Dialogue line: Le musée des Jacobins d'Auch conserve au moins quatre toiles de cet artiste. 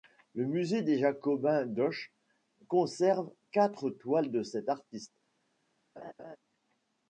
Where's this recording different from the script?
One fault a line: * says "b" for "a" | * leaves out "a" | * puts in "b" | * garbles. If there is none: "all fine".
* leaves out "au moins"